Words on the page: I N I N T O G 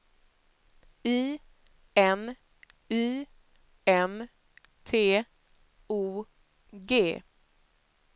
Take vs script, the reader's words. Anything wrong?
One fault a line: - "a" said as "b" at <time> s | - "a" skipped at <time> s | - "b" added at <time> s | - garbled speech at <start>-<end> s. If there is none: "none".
none